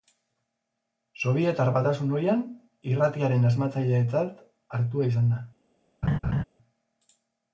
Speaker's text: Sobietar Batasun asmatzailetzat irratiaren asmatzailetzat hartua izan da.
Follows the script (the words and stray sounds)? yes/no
no